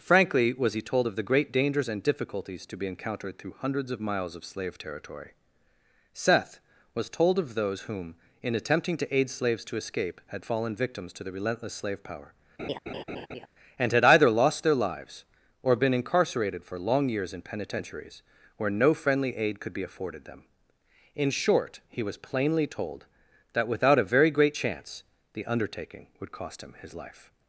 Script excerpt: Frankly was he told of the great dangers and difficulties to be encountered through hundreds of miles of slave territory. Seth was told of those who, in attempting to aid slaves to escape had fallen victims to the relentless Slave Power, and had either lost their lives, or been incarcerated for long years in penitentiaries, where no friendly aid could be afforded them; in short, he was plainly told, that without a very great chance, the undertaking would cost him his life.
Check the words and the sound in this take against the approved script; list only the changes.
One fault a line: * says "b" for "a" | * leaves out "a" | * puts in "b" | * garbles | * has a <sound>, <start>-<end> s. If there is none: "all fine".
* says "whom" for "who"
* has a laugh, 12.6-13.5 s